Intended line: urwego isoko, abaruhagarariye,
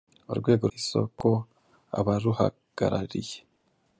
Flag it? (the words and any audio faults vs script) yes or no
no